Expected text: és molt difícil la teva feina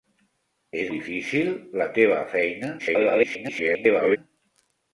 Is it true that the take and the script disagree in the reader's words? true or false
true